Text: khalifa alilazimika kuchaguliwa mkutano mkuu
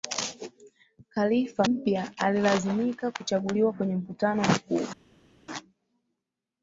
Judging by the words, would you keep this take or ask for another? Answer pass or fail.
fail